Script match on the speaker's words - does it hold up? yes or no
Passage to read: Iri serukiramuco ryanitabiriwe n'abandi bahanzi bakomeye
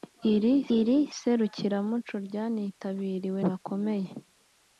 no